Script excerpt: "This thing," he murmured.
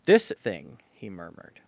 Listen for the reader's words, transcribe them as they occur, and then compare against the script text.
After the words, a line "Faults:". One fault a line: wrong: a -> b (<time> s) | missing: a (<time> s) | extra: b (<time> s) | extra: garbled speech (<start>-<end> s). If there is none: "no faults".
"This thing," he murmured.
Faults:
no faults